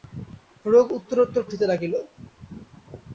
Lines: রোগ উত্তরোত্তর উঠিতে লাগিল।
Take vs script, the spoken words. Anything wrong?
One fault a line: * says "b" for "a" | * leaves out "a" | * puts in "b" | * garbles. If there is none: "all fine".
all fine